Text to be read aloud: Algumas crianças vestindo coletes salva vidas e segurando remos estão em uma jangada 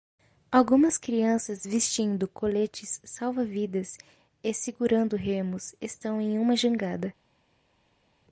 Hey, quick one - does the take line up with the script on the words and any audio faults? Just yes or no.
yes